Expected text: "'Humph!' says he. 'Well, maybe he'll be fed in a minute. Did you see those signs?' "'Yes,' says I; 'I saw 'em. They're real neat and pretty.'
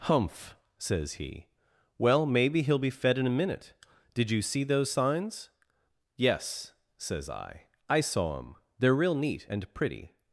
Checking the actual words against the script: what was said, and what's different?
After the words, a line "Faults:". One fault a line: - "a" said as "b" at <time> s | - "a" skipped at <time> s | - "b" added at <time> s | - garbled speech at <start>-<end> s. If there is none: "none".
"'Humph!' says he. 'Well, maybe he'll be fed in a minute. Did you see those signs?' "'Yes,' says I; 'I saw 'em. They're real neat and pretty.'
Faults:
none